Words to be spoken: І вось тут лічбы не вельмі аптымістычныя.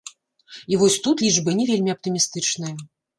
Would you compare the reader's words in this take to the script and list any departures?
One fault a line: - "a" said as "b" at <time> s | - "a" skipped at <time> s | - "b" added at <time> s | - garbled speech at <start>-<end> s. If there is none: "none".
none